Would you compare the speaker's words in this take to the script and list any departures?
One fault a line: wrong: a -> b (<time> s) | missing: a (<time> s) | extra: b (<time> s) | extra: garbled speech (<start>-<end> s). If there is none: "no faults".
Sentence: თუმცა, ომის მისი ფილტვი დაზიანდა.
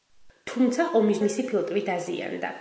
no faults